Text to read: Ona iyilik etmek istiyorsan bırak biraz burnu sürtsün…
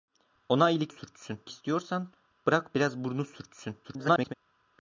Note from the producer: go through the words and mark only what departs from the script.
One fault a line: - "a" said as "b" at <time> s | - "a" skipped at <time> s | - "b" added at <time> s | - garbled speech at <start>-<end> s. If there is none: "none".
- "etmek" said as "sürtsün" at 0.9 s
- garbled speech at 3.8-4.3 s